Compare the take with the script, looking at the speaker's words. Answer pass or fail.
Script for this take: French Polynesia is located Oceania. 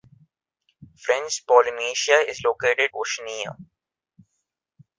pass